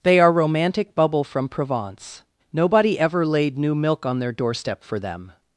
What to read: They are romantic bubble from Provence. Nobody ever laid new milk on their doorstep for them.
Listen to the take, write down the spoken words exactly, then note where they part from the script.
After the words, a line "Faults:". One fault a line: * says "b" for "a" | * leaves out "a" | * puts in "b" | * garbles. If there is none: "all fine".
They are romantic bubble from Provence. Nobody ever laid new milk on their doorstep for them.
Faults:
all fine